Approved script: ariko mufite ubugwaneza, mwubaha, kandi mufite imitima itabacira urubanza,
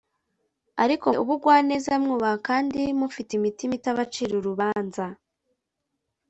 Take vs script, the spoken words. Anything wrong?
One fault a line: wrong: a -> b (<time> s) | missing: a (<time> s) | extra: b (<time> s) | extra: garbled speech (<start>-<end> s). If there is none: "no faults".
missing: mufite (1.1 s)